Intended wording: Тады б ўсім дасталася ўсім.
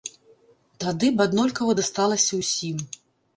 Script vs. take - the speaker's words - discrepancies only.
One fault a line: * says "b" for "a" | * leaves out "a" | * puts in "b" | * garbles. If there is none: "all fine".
* says "аднолькава" for "ўсім"